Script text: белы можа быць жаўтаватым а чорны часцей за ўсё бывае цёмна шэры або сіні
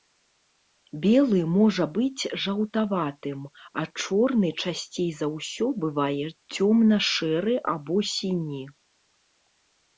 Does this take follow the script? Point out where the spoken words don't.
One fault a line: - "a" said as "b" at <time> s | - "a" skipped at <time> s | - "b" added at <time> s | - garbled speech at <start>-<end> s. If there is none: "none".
none